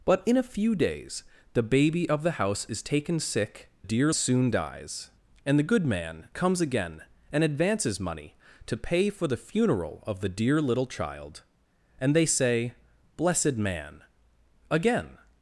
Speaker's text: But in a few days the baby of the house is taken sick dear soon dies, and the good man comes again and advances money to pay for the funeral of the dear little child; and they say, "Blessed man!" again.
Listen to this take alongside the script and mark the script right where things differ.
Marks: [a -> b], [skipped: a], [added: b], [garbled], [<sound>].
But in a few days the baby of the house is taken sick dear soon dies, and the good man comes again and advances money to pay for the funeral of the dear little child; and they say, "Blessed man!" again.